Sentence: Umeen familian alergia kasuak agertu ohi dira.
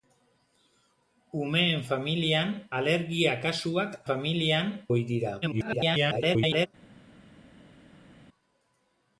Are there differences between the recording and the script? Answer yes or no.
yes